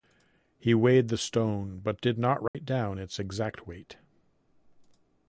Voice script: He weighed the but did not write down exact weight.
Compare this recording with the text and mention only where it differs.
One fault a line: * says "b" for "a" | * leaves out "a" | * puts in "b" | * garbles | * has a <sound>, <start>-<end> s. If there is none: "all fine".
* puts in "stone"
* has a dropout, 2.5-2.5 s
* puts in "its"